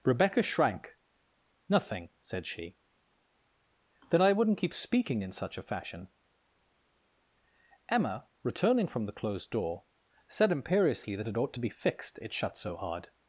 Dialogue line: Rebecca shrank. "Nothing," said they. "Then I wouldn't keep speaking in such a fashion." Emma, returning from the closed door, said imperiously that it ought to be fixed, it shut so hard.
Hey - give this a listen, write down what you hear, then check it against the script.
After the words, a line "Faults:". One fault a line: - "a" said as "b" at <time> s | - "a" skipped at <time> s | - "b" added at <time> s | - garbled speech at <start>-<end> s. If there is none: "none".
Rebecca shrank. "Nothing," said she. "Then I wouldn't keep speaking in such a fashion." Emma, returning from the closed door, said imperiously that it ought to be fixed, it shut so hard.
Faults:
- "they" said as "she" at 2.5 s